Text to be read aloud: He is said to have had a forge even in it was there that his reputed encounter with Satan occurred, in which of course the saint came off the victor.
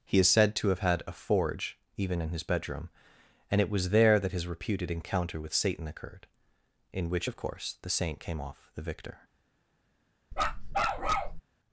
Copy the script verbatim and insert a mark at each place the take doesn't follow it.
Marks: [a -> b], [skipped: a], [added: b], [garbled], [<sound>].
He is said to have had a forge even in [added: his bedroom and] it was there that his reputed encounter with Satan occurred, in which of course the saint came off the victor. [bark]